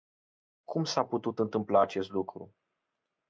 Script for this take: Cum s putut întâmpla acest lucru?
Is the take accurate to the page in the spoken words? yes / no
no